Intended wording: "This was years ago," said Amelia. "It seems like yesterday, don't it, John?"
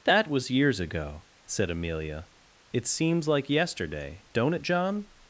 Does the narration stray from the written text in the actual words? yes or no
yes